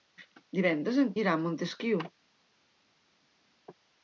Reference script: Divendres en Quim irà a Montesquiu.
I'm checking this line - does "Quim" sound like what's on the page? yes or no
no